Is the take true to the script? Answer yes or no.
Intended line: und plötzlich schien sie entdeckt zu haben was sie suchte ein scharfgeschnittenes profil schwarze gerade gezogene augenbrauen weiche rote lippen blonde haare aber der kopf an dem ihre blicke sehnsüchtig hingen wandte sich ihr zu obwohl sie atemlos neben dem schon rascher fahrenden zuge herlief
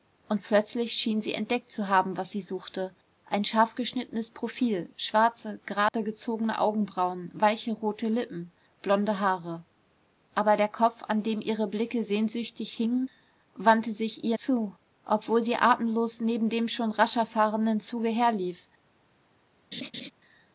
yes